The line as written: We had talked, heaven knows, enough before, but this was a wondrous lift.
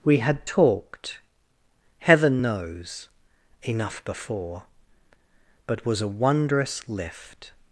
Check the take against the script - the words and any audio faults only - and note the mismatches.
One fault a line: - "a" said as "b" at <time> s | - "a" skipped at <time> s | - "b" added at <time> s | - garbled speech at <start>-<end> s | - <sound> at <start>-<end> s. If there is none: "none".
- "this" skipped at 5.9 s